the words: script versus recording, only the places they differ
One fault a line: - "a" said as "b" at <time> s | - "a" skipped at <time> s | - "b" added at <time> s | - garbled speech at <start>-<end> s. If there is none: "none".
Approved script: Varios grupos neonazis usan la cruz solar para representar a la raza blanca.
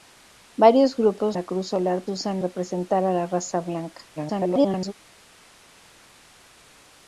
- "neonazis usan" skipped at 1.4 s
- "para" said as "usan" at 2.1 s
- garbled speech at 4.2-4.9 s